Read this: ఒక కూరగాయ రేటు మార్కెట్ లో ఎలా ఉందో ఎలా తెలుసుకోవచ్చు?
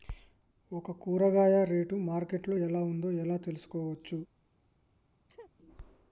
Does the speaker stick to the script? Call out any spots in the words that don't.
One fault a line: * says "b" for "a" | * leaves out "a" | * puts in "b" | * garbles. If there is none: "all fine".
all fine